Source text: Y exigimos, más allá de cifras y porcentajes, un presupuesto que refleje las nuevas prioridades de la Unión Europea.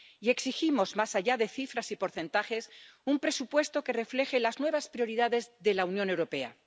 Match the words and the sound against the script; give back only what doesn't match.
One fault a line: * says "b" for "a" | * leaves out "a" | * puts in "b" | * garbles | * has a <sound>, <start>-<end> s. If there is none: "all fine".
all fine